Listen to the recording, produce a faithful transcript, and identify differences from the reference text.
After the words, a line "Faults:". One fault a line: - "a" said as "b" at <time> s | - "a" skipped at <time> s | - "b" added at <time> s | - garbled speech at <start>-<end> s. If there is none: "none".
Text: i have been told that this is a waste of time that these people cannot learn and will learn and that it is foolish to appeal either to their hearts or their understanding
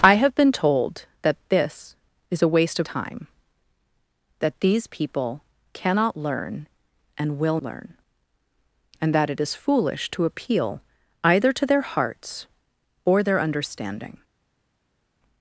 i have been told that this is a waste of time that these people cannot learn and will learn and that it is foolish to appeal either to their hearts or their understanding
Faults:
none